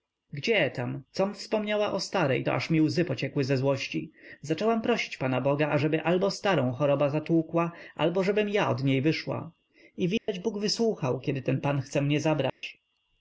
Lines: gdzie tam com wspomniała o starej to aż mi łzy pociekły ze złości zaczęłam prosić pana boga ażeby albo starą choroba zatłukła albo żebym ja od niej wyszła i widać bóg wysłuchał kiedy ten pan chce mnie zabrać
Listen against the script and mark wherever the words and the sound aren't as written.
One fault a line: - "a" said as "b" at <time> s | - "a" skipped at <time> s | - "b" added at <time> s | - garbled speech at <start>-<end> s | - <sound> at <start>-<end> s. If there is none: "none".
- dropout at 10.2-10.3 s
- dropout at 12.5-12.6 s